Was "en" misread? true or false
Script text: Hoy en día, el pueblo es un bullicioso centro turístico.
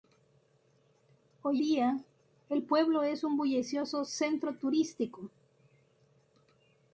true